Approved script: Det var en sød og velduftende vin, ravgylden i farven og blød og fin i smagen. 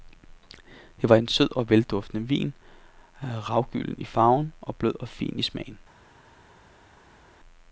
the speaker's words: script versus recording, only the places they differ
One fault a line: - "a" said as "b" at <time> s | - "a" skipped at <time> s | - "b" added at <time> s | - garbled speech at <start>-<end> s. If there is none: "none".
none